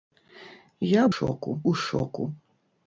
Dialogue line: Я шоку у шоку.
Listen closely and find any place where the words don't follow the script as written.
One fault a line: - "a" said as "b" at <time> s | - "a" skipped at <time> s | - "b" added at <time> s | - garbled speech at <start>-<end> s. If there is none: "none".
none